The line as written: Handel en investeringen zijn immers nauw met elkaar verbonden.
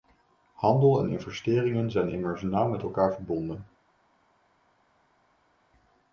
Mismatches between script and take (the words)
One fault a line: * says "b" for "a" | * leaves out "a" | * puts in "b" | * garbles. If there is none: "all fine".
all fine